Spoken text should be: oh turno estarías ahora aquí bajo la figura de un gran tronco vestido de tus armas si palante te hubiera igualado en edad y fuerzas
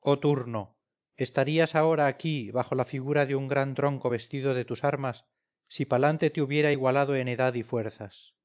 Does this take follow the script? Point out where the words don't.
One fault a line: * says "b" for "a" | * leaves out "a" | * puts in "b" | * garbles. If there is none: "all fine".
all fine